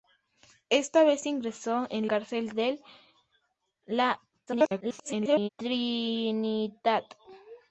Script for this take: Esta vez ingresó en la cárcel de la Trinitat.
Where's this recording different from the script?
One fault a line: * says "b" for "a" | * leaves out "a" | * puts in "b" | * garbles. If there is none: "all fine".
* leaves out "la"
* garbles